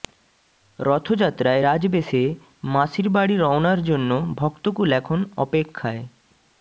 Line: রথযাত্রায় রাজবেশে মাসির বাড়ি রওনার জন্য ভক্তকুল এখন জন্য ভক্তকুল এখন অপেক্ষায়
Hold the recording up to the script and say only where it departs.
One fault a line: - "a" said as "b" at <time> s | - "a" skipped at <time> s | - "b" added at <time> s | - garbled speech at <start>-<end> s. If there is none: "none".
- "জন্য ভক্তকুল এখন" skipped at 5.2 s